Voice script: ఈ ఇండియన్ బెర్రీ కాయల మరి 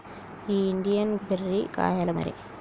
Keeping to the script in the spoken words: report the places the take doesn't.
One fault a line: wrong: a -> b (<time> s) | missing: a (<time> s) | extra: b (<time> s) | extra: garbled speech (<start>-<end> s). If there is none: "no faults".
no faults